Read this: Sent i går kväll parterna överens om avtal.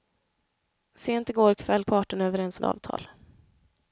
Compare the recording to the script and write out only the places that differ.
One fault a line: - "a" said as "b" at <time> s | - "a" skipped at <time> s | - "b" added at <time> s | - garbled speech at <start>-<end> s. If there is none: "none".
none